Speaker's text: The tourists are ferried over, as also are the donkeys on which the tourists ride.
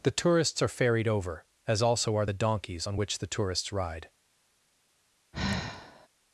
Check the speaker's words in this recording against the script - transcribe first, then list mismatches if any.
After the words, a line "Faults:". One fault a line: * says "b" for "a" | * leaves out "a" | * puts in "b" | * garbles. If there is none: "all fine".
The tourists are ferried over, as also are the donkeys on which the tourists ride.
Faults:
all fine